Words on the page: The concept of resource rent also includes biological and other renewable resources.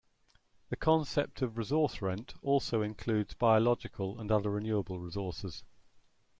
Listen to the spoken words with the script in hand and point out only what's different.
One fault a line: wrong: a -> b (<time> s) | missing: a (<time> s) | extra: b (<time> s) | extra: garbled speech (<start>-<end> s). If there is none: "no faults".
no faults